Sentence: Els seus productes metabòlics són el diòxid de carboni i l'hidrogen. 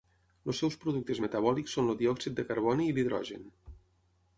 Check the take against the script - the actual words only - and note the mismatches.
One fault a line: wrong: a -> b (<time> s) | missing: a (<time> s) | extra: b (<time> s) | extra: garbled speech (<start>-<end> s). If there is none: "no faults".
no faults